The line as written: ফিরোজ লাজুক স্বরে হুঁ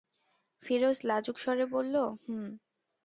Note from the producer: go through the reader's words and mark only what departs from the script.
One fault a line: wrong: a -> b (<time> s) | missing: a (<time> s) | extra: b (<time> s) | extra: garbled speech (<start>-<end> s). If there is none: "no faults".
extra: বলল (1.6 s)